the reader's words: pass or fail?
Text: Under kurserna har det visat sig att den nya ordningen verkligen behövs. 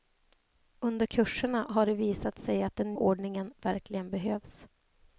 fail